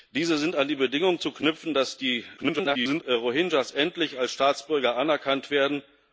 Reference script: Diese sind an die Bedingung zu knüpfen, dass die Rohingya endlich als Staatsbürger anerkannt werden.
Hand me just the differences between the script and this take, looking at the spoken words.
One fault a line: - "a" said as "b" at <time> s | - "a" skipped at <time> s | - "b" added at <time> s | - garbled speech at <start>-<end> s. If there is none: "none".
- garbled speech at 2.4-3.0 s